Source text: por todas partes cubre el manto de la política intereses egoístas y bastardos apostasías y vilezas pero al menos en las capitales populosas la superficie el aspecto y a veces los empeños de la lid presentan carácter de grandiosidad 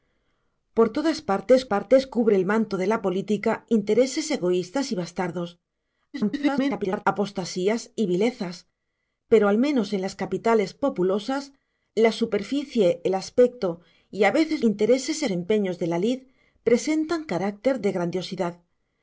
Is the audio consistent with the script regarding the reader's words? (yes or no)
no